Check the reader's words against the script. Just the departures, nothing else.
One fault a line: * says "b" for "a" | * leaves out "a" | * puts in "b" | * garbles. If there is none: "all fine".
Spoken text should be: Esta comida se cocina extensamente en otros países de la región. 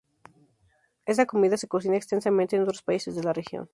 all fine